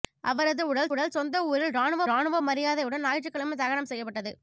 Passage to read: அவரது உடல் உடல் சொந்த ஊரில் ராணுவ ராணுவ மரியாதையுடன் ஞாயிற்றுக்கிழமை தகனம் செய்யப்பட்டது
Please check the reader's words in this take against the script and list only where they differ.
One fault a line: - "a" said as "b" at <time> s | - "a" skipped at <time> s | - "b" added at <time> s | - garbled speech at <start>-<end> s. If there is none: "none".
none